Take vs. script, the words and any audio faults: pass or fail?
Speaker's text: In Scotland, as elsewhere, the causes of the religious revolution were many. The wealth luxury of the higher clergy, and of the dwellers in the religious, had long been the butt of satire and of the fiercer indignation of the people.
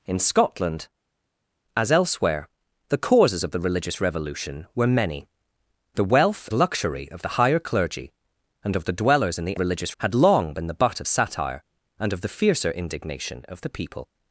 pass